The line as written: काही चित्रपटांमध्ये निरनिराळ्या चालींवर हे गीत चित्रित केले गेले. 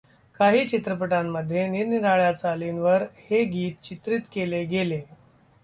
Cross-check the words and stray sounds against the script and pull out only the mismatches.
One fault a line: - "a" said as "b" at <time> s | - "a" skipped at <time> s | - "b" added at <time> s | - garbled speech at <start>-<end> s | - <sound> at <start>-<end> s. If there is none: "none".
none